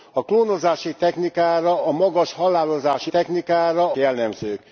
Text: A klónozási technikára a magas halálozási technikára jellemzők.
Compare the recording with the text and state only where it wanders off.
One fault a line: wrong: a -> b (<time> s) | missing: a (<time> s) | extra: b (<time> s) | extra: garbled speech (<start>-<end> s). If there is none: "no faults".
no faults